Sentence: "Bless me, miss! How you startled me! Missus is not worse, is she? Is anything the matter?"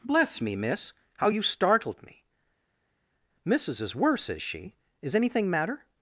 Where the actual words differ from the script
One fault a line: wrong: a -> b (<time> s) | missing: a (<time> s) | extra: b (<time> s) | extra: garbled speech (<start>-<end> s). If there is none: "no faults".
missing: not (3.9 s)
missing: the (5.5 s)